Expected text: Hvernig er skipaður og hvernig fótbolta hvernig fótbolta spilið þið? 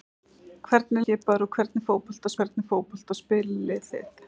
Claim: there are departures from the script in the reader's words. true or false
false